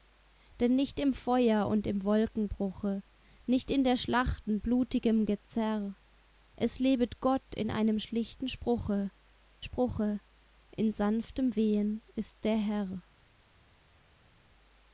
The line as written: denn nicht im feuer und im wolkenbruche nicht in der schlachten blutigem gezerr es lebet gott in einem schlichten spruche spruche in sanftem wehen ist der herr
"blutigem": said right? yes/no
yes